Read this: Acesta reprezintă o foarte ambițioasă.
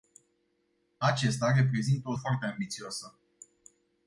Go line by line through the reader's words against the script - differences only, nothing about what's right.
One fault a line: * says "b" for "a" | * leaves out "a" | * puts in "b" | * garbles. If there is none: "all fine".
all fine